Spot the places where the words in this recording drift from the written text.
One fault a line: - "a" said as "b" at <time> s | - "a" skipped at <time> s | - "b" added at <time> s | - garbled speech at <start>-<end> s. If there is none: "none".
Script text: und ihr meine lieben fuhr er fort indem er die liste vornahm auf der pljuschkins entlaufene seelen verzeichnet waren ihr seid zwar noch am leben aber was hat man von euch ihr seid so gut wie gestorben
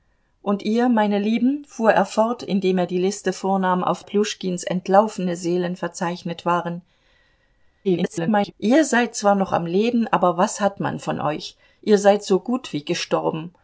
- "der" skipped at 4.0 s
- garbled speech at 7.8-8.5 s